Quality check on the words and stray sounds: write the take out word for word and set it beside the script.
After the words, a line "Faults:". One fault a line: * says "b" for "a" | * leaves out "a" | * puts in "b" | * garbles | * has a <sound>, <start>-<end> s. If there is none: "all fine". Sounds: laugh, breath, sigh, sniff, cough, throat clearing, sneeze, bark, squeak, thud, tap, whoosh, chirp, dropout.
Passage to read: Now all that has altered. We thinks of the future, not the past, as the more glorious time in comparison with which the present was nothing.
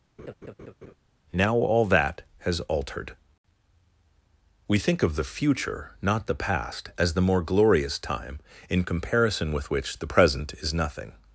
Now all that has altered. We think of the future, not the past, as the more glorious time in comparison with which the present is nothing.
Faults:
* has a laugh, 0.2-0.9 s
* says "think" for "thinks"
* says "is" for "was"